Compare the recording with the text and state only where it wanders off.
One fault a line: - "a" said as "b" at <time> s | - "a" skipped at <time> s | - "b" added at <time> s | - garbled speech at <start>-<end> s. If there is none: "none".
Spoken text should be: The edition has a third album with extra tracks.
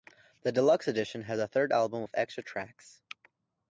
- "deluxe" added at 0.5 s